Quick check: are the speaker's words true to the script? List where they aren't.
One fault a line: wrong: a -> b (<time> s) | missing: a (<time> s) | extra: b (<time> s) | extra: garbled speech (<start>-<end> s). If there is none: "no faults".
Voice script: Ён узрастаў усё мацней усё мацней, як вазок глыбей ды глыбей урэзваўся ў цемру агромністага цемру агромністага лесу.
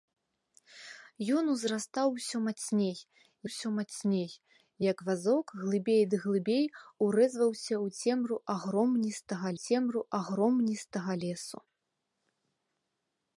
no faults